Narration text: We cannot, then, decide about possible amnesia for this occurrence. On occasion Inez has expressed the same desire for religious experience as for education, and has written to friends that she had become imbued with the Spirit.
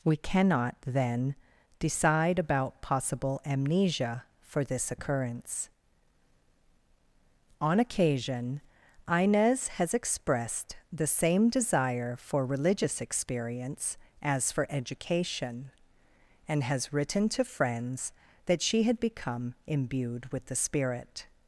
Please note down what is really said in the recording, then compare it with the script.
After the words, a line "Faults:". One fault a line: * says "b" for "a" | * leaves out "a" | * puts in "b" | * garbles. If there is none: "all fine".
We cannot, then, decide about possible amnesia for this occurrence. On occasion Inez has expressed the same desire for religious experience as for education, and has written to friends that she had become imbued with the Spirit.
Faults:
all fine